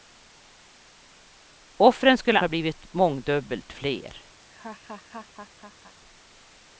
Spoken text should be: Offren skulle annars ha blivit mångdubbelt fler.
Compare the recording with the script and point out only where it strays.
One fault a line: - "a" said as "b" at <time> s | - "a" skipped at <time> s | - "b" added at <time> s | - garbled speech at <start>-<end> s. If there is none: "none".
- "annars" skipped at 2.4 s